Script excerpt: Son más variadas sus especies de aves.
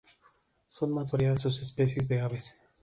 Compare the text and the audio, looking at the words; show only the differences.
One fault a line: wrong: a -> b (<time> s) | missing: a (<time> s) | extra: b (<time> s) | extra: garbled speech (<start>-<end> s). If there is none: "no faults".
no faults